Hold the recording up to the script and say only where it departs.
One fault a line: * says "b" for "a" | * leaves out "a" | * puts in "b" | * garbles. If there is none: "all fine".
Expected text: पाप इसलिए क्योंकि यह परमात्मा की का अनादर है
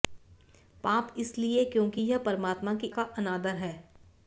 all fine